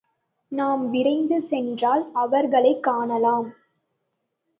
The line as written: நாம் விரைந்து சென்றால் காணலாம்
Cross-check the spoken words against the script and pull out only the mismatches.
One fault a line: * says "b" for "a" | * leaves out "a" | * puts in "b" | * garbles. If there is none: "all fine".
* puts in "அவர்களைக்"